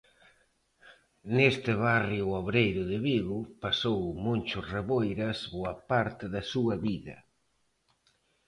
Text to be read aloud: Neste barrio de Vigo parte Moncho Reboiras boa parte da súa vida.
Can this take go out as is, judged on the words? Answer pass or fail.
fail